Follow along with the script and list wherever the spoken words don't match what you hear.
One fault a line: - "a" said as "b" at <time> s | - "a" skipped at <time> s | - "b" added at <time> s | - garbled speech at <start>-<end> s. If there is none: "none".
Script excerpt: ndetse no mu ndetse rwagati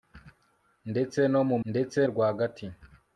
none